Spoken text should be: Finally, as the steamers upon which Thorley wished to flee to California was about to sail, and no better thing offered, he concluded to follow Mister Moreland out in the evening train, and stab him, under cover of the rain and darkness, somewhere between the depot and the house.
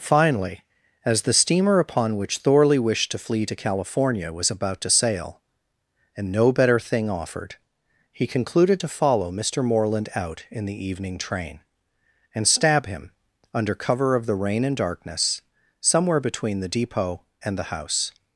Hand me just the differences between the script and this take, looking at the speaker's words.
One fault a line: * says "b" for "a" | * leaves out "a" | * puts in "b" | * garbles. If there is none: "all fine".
* says "steamer" for "steamers"